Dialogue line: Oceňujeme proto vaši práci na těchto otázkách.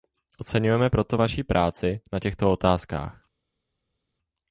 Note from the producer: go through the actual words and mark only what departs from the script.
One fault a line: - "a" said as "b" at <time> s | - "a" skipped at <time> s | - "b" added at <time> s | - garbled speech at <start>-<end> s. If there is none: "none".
none